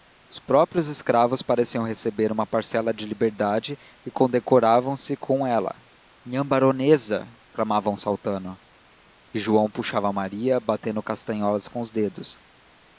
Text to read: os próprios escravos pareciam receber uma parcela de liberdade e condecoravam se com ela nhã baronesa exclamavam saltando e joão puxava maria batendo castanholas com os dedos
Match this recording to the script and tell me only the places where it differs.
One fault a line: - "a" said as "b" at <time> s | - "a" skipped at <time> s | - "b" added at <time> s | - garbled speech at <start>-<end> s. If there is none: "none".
none